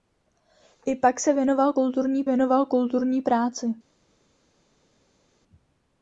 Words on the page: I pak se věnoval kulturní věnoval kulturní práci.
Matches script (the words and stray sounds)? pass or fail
pass